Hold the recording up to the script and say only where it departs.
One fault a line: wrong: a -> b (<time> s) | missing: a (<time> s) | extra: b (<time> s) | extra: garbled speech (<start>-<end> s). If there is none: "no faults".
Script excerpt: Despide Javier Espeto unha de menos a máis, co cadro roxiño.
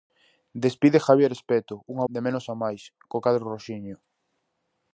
no faults